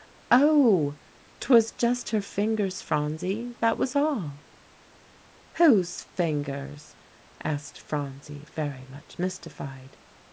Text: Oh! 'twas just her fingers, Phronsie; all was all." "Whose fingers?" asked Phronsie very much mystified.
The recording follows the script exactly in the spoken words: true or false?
false